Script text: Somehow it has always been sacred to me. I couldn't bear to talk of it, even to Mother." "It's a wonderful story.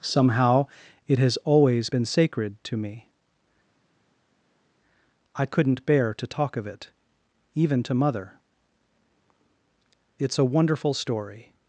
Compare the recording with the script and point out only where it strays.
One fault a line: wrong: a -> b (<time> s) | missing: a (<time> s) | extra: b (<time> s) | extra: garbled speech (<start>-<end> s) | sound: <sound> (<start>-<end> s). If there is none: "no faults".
no faults